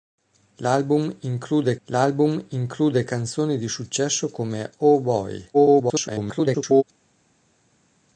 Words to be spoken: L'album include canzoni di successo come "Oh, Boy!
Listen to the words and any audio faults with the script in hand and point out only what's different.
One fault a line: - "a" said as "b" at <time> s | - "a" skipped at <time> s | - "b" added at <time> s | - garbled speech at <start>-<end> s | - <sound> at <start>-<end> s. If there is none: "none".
- "l'album include" added at 1.8 s
- garbled speech at 5.5-6.8 s